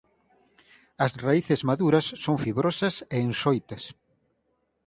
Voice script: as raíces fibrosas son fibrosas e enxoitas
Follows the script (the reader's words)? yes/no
no